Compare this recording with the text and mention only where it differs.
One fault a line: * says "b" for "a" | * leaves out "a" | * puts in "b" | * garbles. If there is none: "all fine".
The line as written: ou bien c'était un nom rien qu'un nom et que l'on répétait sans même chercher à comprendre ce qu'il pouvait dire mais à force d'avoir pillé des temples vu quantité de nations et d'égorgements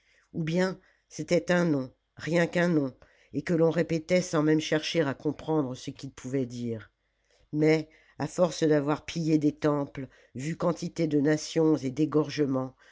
all fine